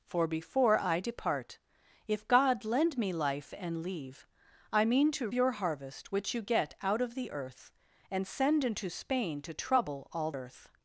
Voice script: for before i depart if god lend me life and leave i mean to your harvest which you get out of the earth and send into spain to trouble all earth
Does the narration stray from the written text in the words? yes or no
no